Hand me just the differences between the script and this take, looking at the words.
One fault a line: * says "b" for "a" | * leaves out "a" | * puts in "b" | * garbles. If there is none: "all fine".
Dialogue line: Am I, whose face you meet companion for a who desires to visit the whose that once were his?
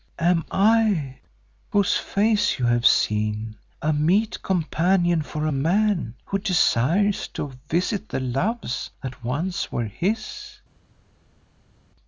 * puts in "have seen a"
* puts in "man"
* says "loves" for "whose"